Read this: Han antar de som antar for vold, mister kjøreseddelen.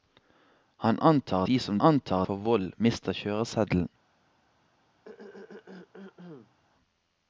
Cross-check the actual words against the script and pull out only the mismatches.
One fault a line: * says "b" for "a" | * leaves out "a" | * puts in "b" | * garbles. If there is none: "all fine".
all fine